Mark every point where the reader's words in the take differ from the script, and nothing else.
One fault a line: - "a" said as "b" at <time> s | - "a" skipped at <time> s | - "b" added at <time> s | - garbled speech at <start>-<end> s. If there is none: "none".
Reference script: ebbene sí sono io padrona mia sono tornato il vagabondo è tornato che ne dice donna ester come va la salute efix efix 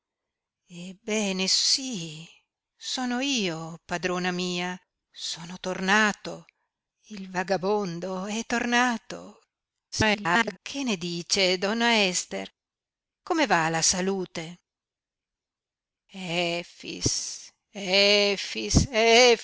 - garbled speech at 9.9-10.6 s